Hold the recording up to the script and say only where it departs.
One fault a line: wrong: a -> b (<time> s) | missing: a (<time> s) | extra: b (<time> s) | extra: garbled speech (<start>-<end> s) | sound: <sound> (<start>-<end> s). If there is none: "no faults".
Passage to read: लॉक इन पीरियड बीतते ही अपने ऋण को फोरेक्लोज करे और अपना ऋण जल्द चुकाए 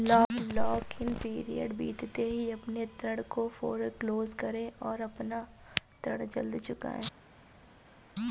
no faults